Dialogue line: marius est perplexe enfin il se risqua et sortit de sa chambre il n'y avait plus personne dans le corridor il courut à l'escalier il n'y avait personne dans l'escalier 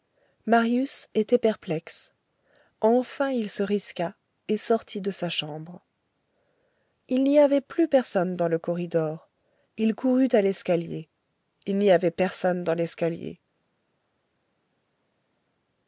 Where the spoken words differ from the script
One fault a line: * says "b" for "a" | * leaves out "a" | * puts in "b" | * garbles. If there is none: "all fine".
* says "était" for "est"